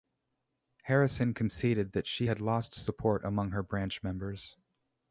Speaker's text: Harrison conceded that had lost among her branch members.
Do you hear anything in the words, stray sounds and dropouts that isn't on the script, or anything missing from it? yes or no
yes